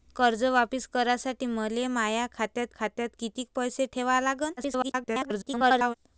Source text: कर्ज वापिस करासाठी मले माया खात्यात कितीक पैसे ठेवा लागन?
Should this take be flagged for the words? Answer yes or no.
yes